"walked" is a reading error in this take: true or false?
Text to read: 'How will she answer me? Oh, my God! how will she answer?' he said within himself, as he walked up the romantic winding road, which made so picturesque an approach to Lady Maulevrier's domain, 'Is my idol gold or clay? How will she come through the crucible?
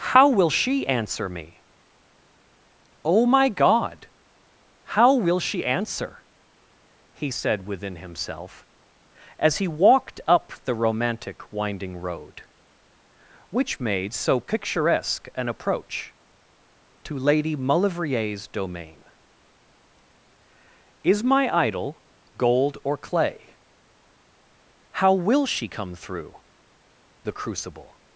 false